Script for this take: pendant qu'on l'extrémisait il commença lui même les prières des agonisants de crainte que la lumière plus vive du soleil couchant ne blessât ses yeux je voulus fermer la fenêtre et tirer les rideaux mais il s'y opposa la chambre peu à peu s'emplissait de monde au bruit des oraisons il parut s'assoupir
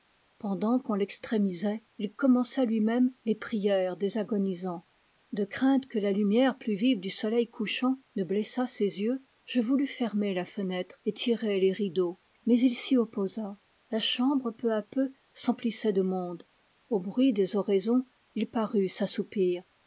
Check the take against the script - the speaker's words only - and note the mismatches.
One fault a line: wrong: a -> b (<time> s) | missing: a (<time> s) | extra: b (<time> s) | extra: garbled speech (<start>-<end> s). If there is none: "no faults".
no faults